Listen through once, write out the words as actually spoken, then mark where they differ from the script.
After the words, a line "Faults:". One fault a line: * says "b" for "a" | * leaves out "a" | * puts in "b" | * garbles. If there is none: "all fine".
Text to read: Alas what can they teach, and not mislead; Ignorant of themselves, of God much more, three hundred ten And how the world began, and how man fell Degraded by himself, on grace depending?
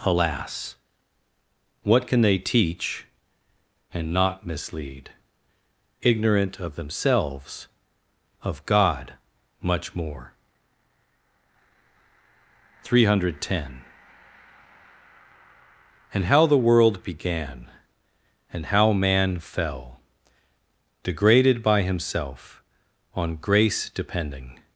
Alas what can they teach, and not mislead; Ignorant of themselves, of God much more, three hundred ten And how the world began, and how man fell Degraded by himself, on grace depending?
Faults:
all fine